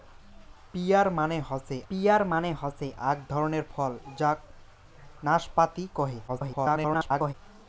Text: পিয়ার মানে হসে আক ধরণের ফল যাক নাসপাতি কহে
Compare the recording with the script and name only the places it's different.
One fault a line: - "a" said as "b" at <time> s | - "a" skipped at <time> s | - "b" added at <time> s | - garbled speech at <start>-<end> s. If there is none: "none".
- "পিয়ার মানে হসে" added at 1.9 s
- garbled speech at 6.3-7.3 s